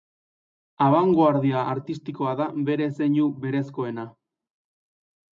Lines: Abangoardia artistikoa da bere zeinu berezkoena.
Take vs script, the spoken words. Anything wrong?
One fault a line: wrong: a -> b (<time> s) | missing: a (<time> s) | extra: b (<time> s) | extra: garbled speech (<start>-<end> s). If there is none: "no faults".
no faults